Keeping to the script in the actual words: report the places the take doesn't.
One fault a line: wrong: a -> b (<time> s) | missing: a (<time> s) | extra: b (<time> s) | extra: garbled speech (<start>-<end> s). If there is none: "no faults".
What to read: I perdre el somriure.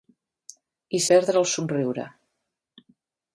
no faults